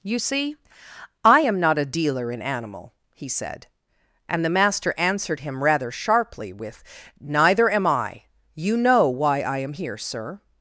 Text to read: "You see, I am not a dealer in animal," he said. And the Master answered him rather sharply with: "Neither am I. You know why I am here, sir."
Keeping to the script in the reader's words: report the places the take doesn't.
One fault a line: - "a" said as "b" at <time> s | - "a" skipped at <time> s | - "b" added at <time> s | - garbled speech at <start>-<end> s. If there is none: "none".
none